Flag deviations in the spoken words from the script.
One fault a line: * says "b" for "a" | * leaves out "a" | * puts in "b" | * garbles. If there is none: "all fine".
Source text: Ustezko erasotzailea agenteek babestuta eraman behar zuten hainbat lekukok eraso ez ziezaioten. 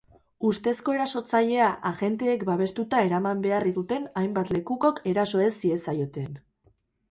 all fine